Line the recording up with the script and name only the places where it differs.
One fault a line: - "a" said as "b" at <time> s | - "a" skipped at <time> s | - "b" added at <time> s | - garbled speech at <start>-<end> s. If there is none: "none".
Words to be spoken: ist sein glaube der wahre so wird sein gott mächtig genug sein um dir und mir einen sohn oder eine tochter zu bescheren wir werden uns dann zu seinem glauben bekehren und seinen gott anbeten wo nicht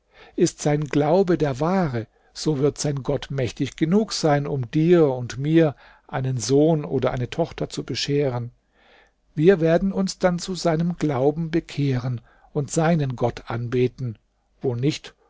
none